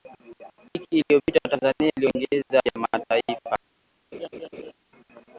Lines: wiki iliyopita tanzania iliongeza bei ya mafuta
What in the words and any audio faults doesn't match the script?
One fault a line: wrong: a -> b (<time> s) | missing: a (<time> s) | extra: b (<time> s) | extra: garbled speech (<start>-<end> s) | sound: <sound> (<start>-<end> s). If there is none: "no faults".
missing: bei (2.6 s)
sound: laugh (4.1-4.7 s)